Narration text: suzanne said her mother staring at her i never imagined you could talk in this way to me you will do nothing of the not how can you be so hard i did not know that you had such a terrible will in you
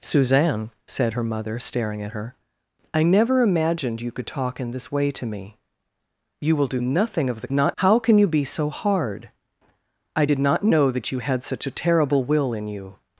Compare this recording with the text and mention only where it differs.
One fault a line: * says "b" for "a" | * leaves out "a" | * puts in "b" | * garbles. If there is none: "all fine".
all fine